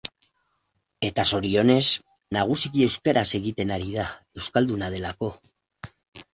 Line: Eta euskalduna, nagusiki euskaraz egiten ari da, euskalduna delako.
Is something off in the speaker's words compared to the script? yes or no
yes